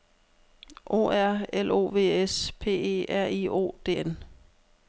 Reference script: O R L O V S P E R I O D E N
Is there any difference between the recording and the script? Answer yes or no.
yes